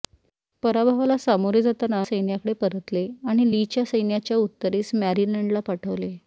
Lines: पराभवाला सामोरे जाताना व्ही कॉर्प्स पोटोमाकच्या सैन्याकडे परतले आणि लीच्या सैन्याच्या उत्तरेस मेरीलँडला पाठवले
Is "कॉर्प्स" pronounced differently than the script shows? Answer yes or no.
yes